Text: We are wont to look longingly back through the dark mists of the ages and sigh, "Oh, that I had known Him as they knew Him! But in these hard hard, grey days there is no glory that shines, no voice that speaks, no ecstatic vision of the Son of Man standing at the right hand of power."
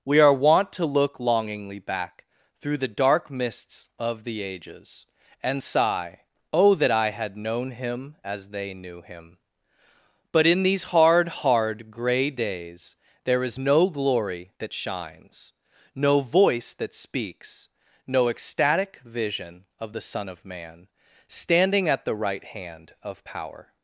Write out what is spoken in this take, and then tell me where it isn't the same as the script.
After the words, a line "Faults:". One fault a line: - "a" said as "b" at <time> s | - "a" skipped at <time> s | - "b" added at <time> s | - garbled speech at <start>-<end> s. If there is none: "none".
We are wont to look longingly back through the dark mists of the ages and sigh, "Oh, that I had known Him as they knew Him! But in these hard hard, grey days there is no glory that shines, no voice that speaks, no ecstatic vision of the Son of Man standing at the right hand of power."
Faults:
none